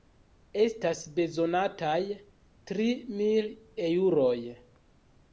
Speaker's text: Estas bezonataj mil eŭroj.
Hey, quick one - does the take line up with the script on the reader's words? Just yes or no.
no